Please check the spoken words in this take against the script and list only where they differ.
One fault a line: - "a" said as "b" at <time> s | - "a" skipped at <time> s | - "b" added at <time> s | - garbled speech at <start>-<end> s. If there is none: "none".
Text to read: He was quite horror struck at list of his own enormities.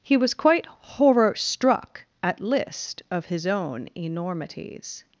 none